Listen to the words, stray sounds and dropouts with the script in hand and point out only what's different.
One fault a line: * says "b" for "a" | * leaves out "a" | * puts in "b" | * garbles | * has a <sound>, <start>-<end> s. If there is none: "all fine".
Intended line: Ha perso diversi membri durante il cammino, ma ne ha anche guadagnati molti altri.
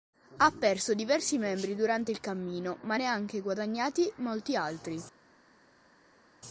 all fine